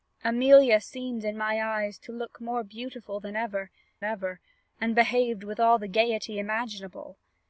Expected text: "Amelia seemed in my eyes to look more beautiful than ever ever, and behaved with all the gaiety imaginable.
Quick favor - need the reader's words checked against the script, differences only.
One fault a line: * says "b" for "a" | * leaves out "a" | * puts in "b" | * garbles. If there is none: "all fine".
all fine